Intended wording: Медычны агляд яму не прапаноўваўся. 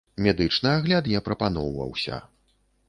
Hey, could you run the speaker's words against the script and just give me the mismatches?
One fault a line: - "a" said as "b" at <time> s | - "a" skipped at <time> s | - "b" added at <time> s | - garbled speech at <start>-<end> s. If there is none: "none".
- "яму" skipped at 1.1 s